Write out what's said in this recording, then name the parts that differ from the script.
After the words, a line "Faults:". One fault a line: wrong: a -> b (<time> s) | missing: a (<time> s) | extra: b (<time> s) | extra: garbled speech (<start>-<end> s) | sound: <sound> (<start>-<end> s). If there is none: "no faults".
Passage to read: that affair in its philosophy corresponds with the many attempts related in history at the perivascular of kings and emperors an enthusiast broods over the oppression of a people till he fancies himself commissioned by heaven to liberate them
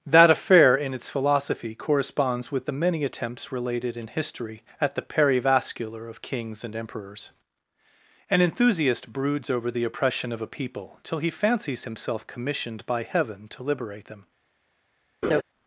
that affair in its philosophy corresponds with the many attempts related in history at the perivascular of kings and emperors an enthusiast broods over the oppression of a people till he fancies himself commissioned by heaven to liberate them
Faults:
sound: laugh (15.2-15.4 s)